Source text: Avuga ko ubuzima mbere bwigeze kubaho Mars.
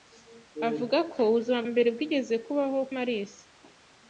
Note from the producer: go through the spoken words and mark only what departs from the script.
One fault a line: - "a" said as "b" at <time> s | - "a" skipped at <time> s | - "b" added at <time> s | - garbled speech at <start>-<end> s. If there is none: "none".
none